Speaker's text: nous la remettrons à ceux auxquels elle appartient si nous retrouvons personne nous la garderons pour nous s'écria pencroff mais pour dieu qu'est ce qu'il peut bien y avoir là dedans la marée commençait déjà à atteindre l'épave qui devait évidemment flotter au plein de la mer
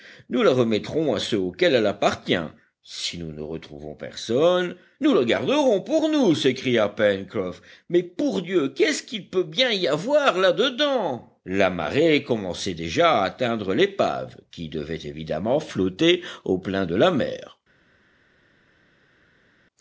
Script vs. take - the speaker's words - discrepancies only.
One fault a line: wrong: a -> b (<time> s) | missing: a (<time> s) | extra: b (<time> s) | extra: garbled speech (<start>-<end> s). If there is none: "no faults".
extra: ne (3.3 s)